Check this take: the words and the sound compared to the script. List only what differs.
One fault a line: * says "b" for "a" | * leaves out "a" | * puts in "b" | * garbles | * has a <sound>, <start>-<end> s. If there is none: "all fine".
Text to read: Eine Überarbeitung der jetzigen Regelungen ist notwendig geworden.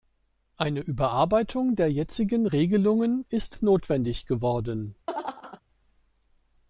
* has a laugh, 5.1-5.6 s